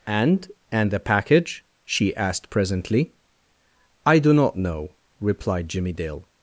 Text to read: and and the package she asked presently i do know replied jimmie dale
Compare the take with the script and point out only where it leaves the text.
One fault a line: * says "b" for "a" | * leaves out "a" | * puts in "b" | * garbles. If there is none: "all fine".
* puts in "not"